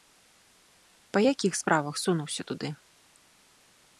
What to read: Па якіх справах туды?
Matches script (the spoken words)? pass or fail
fail